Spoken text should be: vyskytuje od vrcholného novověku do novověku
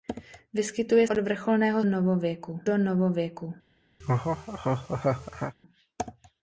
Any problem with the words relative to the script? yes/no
no